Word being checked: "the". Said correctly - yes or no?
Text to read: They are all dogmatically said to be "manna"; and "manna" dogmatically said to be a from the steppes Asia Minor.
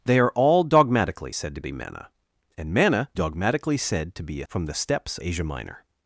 yes